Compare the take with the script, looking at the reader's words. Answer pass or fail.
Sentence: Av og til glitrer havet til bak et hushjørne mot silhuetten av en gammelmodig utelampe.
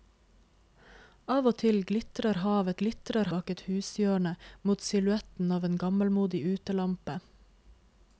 fail